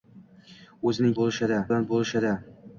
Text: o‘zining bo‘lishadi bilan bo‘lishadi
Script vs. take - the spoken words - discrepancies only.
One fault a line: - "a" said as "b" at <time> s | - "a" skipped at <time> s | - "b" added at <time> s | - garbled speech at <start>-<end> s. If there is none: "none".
none